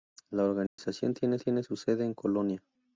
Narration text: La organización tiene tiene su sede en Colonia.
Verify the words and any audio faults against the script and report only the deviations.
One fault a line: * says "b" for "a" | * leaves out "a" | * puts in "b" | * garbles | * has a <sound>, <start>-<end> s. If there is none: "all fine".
* has a dropout, 0.7-0.8 s